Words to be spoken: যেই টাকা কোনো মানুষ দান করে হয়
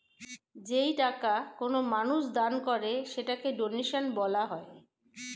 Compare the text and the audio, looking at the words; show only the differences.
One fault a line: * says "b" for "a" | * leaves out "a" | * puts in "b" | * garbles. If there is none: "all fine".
* puts in "সেটাকে ডোনেশন বলা"